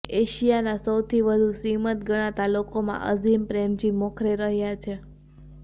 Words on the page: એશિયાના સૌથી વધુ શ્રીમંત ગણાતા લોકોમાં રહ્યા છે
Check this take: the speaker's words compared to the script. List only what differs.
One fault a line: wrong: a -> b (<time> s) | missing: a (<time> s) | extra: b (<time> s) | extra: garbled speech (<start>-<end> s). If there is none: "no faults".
extra: અઝીમ પ્રેમજી મોખરે (3.1 s)